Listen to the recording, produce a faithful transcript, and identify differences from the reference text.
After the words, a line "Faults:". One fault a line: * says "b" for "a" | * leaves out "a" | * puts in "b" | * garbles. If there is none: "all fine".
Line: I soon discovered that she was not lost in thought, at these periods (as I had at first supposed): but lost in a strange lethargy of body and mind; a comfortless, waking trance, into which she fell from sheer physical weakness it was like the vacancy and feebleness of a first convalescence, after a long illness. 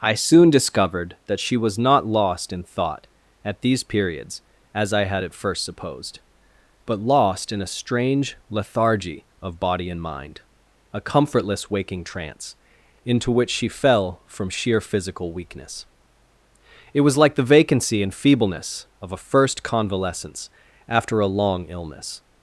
I soon discovered that she was not lost in thought, at these periods (as I had at first supposed): but lost in a strange lethargy of body and mind; a comfortless, waking trance, into which she fell from sheer physical weakness it was like the vacancy and feebleness of a first convalescence, after a long illness.
Faults:
all fine